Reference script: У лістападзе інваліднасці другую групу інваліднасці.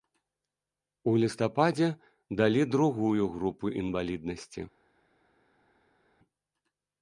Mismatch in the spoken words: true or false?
true